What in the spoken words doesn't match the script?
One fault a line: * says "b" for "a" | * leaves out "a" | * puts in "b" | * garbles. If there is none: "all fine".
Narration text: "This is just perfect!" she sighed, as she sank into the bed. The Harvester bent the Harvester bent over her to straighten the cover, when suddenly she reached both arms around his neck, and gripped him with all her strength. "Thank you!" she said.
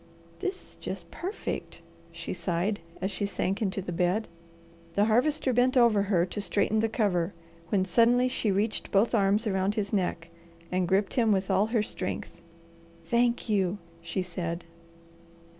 * leaves out "the Harvester bent"